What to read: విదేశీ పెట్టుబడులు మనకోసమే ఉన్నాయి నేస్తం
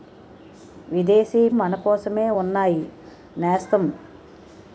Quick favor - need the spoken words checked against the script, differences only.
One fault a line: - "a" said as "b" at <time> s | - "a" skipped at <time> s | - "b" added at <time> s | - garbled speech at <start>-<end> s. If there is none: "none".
- "పెట్టుబడులు" skipped at 1.5 s